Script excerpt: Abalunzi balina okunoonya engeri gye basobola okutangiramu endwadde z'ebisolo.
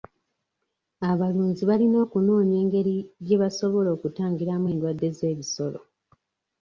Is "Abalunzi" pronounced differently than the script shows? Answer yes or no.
no